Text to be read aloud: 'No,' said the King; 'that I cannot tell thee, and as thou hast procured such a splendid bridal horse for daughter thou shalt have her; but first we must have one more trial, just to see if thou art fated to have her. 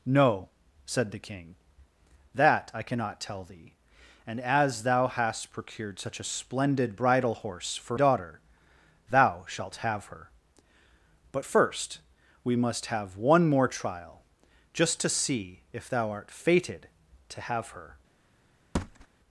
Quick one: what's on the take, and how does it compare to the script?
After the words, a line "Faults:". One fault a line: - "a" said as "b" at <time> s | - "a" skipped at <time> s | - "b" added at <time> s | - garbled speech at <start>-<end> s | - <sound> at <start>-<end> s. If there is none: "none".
'No,' said the King; 'that I cannot tell thee, and as thou hast procured such a splendid bridal horse for daughter thou shalt have her; but first we must have one more trial, just to see if thou art fated to have her.
Faults:
- thud at 18.7-19.1 s